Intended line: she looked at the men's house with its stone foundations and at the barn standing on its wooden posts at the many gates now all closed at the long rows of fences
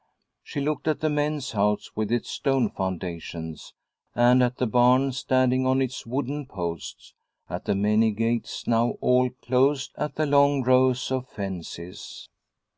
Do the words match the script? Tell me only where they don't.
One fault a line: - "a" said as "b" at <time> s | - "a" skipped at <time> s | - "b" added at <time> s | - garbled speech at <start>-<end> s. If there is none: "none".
none